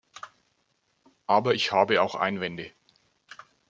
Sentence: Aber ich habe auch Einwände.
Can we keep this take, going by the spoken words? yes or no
yes